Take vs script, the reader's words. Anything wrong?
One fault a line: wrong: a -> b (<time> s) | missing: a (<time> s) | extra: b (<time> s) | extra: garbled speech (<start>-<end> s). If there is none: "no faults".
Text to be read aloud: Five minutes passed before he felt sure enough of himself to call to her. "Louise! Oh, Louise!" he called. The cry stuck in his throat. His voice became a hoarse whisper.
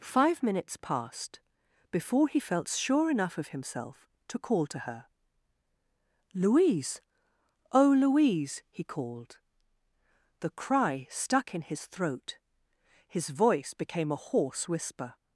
no faults